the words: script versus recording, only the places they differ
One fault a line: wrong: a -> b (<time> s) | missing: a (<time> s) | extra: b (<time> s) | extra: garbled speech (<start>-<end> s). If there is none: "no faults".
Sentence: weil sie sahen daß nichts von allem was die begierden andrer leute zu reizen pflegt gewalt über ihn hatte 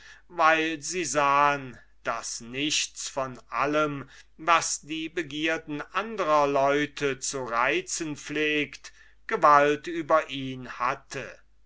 no faults